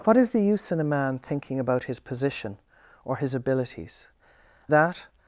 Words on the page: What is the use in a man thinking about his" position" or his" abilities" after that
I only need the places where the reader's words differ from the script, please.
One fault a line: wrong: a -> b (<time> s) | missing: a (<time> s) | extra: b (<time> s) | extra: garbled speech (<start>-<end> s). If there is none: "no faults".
missing: after (4.1 s)